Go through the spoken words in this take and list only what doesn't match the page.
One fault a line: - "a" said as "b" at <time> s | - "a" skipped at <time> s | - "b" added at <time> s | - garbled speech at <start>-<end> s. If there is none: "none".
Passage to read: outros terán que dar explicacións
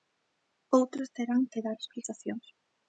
none